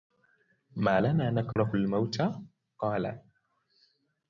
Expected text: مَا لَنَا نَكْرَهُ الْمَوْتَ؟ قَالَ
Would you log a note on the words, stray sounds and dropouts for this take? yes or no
yes